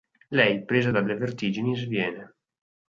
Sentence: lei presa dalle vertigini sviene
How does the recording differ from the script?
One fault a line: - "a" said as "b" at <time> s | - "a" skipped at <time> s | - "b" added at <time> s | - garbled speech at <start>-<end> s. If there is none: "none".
none